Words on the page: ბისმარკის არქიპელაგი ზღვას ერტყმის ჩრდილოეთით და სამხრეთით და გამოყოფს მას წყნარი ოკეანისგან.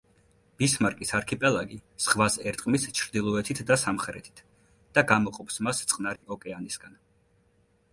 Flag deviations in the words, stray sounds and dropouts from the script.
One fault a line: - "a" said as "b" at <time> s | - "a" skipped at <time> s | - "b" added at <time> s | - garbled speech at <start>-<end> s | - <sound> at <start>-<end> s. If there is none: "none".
- dropout at 6.2-6.2 s